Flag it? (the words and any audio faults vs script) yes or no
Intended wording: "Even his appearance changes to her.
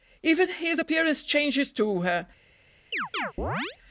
yes